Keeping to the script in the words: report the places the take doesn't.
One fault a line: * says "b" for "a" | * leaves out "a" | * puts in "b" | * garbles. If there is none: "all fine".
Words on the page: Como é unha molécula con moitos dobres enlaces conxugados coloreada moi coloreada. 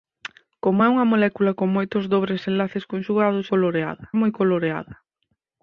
all fine